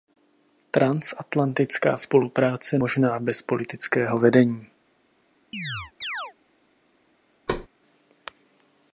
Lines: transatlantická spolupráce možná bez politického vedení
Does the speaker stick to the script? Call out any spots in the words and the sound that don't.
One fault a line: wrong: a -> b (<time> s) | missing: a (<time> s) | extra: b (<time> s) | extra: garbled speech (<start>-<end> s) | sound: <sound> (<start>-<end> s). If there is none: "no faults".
sound: chirp (5.5-6.3 s)
sound: thud (7.5-7.7 s)